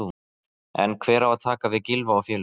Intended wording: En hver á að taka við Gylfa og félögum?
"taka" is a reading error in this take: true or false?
false